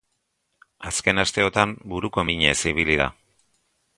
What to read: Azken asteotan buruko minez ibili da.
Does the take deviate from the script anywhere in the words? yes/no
no